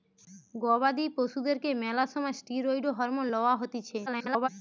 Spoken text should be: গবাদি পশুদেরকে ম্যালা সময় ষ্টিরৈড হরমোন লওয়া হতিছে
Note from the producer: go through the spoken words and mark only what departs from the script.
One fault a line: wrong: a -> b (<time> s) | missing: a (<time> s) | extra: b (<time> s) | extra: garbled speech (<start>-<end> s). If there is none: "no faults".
extra: garbled speech (4.1-4.5 s)